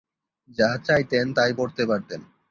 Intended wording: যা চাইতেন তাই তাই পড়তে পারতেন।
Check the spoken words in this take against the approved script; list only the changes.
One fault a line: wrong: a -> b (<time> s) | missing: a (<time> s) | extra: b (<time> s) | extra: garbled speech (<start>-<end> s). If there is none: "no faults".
missing: তাই (1.5 s)